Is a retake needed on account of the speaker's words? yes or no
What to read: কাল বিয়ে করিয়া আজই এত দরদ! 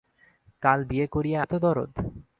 yes